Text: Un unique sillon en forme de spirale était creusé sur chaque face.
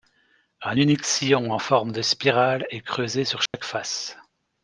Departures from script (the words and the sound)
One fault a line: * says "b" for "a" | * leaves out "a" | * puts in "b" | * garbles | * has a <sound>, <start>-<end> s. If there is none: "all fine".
* says "est" for "était"
* has a dropout, 3.5-3.5 s